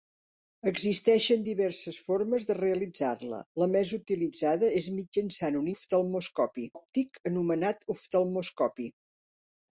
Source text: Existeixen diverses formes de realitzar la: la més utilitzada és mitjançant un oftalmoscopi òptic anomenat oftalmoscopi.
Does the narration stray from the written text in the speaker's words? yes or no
no